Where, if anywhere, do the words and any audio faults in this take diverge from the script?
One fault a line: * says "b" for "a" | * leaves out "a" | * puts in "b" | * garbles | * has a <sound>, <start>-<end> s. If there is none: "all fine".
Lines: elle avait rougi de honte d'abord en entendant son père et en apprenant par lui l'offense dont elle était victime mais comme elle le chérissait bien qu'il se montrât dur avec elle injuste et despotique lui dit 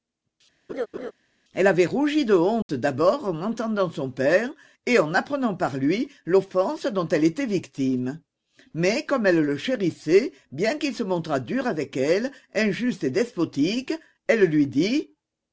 * has a laugh, 0.7-1.1 s
* has a dropout, 2.6-2.7 s
* puts in "elle"